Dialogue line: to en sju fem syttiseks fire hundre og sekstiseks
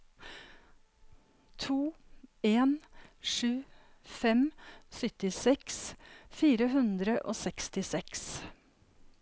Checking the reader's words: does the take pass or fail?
pass